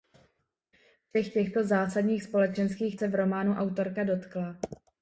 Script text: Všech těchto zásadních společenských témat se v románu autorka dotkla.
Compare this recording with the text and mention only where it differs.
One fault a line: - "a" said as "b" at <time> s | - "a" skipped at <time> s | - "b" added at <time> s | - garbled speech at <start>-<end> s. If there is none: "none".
- "témat" skipped at 3.0 s